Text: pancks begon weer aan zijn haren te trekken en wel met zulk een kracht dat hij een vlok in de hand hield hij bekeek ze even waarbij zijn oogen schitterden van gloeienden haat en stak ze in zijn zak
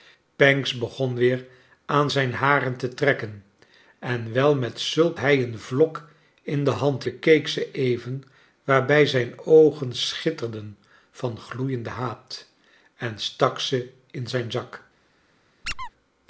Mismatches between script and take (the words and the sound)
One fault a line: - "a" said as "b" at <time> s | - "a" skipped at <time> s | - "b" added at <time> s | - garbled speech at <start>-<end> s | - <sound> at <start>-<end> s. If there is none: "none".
- "een kracht dat" skipped at 5.2 s
- "hield hij" skipped at 7.0 s
- squeak at 15.6-15.9 s